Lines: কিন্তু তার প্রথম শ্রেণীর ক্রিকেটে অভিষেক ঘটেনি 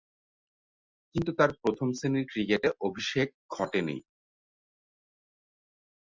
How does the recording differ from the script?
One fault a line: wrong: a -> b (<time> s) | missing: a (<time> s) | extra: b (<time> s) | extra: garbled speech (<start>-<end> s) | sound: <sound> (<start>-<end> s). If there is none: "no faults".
no faults